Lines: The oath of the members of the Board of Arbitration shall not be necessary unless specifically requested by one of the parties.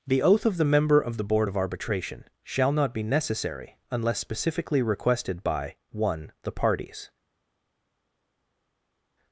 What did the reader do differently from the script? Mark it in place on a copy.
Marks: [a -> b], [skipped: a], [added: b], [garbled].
The oath of the [members -> member] of the Board of Arbitration shall not be necessary unless specifically requested by one [skipped: of] the parties.